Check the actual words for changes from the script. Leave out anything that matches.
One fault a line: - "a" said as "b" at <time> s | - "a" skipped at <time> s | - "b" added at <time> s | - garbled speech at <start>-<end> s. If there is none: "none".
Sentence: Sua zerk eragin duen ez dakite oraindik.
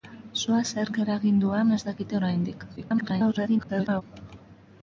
- garbled speech at 2.8-4.0 s